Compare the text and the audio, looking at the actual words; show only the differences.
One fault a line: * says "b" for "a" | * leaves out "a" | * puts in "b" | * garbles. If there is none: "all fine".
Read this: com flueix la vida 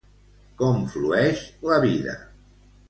all fine